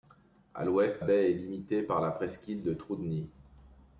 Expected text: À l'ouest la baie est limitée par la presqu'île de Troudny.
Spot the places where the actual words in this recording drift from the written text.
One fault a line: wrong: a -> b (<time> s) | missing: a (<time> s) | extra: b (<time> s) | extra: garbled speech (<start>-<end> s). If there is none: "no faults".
missing: la (1.0 s)